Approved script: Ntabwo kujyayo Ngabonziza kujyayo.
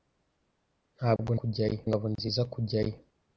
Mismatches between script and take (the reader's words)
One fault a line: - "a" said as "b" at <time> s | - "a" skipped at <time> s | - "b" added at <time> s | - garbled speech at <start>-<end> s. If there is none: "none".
none